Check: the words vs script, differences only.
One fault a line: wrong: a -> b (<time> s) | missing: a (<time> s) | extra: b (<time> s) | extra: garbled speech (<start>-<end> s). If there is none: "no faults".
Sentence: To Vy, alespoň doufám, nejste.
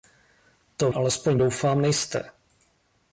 missing: Vy (0.9 s)